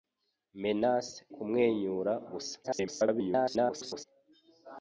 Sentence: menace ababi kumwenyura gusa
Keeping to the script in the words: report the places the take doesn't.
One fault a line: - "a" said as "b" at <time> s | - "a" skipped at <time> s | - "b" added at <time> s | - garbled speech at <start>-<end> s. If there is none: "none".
- "ababi" skipped at 1.2 s
- garbled speech at 2.6-4.0 s